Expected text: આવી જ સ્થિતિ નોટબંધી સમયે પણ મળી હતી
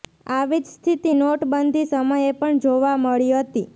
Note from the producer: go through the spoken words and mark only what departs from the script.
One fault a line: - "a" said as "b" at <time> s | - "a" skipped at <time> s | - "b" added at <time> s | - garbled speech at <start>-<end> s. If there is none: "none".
- "જોવા" added at 2.6 s